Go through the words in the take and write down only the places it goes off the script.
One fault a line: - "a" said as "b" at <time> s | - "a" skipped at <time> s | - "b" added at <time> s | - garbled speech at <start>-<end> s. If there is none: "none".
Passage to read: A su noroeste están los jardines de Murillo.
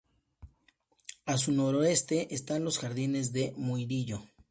none